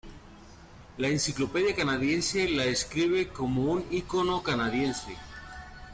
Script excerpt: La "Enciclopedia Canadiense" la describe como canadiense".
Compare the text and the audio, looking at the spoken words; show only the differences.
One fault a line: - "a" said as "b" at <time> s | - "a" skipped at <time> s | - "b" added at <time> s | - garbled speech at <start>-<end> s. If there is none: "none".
- "un icono" added at 3.7 s